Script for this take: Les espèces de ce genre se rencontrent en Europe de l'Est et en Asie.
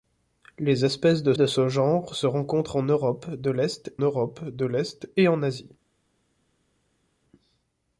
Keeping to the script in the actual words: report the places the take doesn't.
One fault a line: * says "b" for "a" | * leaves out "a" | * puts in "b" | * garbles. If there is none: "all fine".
* puts in "de"
* puts in "Europe de l'Est"